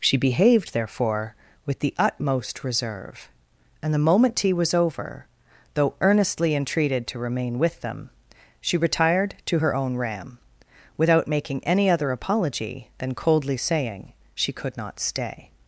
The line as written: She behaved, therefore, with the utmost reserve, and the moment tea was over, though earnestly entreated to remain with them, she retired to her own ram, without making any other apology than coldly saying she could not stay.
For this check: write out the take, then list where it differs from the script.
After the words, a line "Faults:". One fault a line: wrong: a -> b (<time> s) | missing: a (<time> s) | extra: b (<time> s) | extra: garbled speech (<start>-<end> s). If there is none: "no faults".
She behaved, therefore, with the utmost reserve, and the moment tea was over, though earnestly entreated to remain with them, she retired to her own ram, without making any other apology than coldly saying she could not stay.
Faults:
no faults